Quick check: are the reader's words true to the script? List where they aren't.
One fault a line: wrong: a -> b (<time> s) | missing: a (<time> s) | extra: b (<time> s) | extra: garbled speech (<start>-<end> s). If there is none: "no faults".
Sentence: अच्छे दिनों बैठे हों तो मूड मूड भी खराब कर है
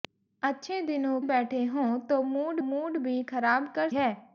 no faults